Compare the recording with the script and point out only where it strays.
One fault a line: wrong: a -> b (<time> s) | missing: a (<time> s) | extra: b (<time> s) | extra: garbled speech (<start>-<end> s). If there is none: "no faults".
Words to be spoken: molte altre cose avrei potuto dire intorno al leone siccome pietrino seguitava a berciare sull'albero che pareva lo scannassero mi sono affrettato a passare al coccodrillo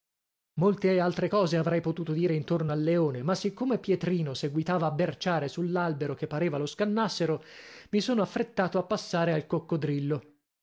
extra: ma (3.2 s)